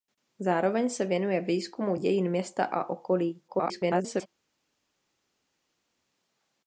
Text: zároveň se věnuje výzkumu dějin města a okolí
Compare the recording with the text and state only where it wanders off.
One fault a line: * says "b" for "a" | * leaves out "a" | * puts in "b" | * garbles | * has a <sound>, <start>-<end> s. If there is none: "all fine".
* garbles